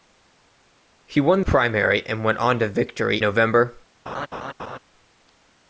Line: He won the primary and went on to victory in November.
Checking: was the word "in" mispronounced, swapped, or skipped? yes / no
yes